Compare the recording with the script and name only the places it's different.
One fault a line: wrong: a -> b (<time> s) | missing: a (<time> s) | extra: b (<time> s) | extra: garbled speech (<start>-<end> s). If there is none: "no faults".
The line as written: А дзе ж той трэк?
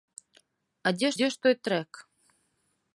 extra: дзе (1.1 s)